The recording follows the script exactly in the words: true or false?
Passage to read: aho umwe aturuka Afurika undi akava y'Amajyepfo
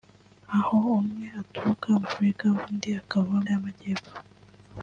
true